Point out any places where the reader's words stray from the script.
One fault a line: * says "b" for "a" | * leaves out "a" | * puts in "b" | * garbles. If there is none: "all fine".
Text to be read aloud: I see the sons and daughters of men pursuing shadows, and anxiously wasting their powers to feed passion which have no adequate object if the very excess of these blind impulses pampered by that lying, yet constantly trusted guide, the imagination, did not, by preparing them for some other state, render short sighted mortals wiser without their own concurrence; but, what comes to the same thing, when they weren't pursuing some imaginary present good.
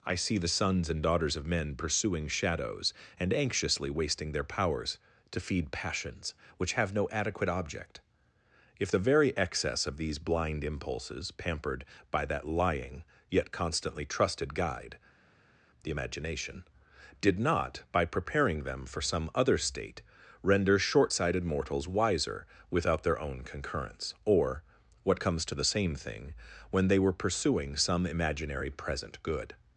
* says "passions" for "passion"
* says "or" for "but"
* says "were" for "weren't"